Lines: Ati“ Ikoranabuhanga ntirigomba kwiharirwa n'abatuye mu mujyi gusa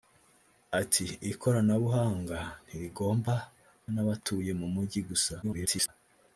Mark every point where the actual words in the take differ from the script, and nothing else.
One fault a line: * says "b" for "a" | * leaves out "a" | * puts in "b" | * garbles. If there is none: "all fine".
* leaves out "kwiharirwa"
* garbles